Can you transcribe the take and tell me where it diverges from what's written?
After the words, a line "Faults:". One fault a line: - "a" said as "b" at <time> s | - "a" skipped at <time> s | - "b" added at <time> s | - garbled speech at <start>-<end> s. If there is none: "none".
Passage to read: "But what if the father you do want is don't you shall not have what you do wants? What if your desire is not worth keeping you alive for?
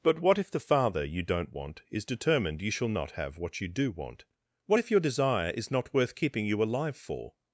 "But what if the father you don't want is determined you shall not have what you do want? What if your desire is not worth keeping you alive for?
Faults:
- "do" said as "don't" at 1.2 s
- "don't" said as "determined" at 2.0 s
- "wants" said as "want" at 3.9 s